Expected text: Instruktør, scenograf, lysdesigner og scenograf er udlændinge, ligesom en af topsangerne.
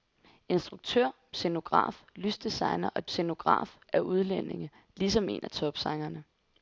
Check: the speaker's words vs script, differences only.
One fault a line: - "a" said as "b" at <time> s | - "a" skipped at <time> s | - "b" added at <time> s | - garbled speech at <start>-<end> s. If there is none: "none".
none